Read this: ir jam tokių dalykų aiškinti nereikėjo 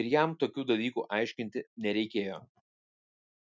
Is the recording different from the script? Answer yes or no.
no